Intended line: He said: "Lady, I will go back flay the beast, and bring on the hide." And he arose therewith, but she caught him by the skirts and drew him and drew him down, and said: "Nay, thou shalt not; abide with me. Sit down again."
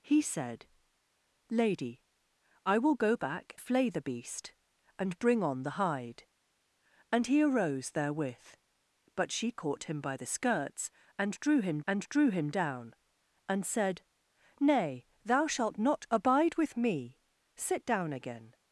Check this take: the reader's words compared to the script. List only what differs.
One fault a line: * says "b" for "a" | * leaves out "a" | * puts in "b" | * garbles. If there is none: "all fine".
all fine